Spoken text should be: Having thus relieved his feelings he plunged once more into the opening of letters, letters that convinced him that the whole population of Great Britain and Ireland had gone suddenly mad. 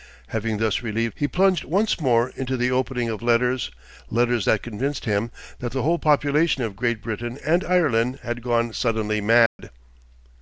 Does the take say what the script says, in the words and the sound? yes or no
no